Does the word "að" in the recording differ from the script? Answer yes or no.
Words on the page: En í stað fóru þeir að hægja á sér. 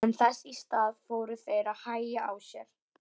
no